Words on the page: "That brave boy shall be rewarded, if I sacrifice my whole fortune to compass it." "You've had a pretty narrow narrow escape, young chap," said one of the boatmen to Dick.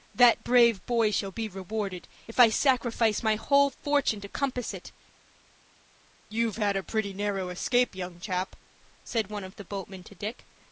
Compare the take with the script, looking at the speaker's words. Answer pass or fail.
fail